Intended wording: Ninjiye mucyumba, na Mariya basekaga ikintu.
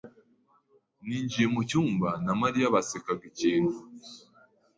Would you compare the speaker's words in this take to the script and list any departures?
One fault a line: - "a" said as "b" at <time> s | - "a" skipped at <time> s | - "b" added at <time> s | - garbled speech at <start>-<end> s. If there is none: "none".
none